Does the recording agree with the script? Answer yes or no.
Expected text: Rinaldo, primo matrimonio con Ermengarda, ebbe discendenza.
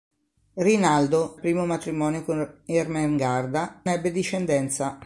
yes